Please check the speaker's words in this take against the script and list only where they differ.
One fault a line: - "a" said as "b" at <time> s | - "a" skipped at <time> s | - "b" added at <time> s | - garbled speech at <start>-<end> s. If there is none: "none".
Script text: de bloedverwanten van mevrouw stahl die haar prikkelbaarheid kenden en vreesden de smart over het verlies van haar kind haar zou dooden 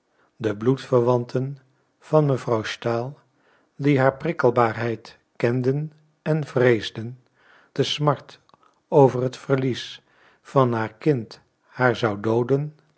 none